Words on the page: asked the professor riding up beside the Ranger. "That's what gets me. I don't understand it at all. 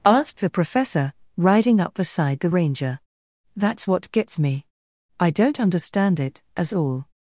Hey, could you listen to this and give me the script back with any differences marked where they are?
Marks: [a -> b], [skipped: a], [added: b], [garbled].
asked the professor riding up beside the Ranger. "That's what gets me. I don't understand it [at -> as] all.